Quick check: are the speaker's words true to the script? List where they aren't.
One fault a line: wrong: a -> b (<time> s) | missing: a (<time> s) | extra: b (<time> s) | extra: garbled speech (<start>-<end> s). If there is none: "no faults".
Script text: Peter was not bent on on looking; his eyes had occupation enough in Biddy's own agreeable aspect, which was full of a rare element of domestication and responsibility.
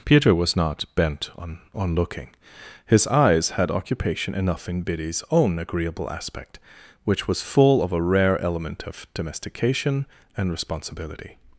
no faults